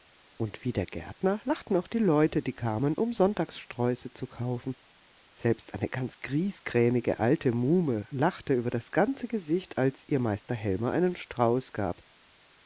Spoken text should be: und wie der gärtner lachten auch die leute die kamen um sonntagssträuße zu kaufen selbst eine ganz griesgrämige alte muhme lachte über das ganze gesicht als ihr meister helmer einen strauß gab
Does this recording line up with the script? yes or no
yes